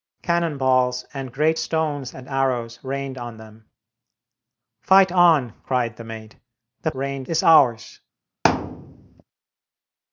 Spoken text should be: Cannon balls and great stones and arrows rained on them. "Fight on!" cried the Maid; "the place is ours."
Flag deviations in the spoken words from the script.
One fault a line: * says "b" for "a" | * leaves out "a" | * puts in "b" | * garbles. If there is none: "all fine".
* says "rained" for "place"